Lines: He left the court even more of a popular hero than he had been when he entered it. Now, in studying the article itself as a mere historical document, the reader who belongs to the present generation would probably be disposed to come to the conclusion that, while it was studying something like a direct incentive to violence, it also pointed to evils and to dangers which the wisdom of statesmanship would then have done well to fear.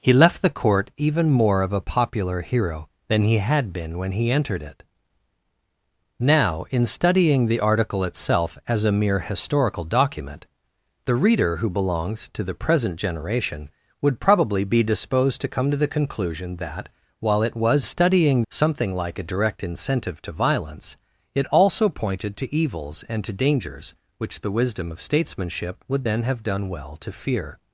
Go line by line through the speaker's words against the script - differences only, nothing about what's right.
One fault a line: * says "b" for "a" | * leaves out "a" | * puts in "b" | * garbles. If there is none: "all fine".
all fine